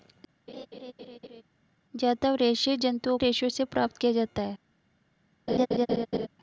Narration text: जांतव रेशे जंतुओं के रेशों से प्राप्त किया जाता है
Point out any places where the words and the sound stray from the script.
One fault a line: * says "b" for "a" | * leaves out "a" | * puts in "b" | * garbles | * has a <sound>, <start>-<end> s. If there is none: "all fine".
* has a laugh, 0.5-1.4 s
* leaves out "के"
* has a laugh, 5.5-6.3 s